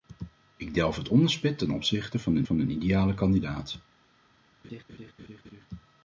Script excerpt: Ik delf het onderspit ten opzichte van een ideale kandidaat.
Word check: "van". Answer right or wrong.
right